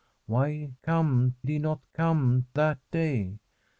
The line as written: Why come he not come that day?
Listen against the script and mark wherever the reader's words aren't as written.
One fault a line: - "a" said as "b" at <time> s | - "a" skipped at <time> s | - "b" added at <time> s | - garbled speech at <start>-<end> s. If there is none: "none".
none